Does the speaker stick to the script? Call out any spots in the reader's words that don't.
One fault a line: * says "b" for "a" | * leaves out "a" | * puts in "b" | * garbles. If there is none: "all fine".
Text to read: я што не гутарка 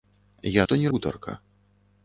all fine